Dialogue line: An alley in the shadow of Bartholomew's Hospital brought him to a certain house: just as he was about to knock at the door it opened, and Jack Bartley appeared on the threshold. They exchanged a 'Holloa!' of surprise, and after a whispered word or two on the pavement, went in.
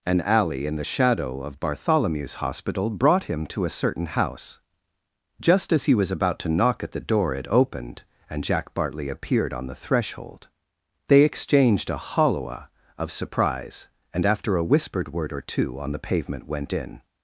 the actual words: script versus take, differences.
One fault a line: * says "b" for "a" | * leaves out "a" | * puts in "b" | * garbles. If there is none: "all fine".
all fine